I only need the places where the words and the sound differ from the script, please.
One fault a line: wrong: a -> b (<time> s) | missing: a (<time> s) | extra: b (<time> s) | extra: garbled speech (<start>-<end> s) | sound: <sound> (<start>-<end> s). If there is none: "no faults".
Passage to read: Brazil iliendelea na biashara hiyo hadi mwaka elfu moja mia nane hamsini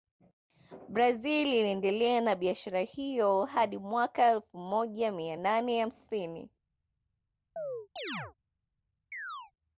sound: chirp (7.6-8.3 s)
sound: chirp (9.1-9.5 s)